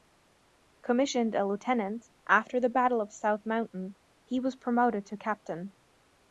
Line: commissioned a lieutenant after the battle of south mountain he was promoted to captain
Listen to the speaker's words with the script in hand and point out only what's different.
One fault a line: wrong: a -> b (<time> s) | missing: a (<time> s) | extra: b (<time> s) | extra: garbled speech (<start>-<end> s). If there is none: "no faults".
no faults